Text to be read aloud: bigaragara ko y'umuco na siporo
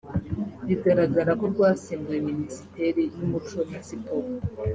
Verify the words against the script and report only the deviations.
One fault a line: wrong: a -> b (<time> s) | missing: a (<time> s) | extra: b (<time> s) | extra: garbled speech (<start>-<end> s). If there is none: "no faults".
extra: rwasimbuye minisiteri (1.5 s)